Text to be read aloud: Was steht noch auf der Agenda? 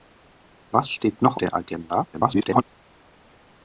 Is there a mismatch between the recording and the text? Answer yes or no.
yes